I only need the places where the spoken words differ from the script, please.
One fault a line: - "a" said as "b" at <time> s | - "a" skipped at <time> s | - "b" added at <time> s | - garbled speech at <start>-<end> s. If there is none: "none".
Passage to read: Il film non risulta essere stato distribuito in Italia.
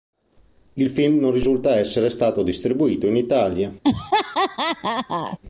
none